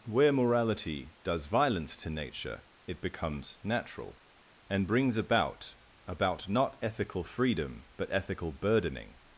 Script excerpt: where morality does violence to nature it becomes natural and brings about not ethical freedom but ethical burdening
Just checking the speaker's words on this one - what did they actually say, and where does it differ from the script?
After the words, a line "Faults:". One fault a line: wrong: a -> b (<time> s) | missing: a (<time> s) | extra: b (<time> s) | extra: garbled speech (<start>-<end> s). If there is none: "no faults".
where morality does violence to nature it becomes natural and brings about about not ethical freedom but ethical burdening
Faults:
extra: about (6.1 s)